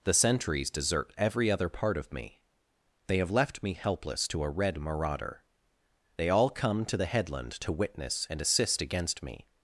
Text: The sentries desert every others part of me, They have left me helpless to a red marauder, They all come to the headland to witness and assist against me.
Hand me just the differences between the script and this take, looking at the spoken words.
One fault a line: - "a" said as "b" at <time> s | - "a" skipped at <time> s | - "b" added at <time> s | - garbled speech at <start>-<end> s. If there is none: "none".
- "others" said as "other" at 1.5 s